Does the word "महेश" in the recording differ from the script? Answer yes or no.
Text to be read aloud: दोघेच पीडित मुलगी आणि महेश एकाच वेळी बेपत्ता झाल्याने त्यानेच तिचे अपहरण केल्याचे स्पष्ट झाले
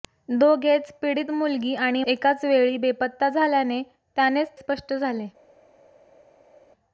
yes